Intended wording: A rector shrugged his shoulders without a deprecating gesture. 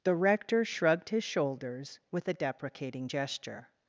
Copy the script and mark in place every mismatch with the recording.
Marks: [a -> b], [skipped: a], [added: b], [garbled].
[A -> The] rector shrugged his shoulders [without -> with] a deprecating gesture.